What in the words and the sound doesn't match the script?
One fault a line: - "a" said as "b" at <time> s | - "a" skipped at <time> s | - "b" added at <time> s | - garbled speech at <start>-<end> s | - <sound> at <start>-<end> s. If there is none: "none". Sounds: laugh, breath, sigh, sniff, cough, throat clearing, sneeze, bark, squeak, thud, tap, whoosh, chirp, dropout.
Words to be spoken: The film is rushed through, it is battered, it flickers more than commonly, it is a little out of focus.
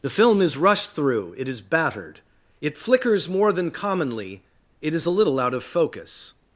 none